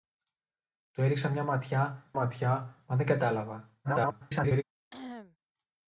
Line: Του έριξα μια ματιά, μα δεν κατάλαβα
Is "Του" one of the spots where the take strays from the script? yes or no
no